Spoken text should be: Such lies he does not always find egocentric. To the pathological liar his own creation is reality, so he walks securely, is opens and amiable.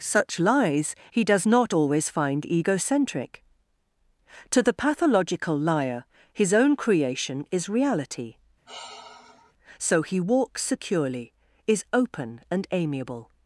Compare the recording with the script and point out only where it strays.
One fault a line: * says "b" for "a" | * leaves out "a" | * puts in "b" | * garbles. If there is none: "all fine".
* says "open" for "opens"